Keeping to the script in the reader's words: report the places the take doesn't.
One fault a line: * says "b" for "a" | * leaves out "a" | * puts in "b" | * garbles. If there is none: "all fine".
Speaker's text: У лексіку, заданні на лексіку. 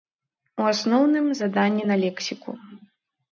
* says "асноўным" for "лексіку"